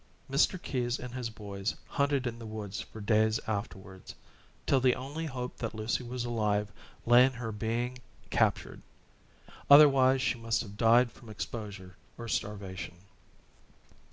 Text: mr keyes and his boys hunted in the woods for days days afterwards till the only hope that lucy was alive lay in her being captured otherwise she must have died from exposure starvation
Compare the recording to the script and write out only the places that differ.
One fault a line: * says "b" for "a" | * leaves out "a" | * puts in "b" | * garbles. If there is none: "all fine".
* leaves out "days"
* puts in "or"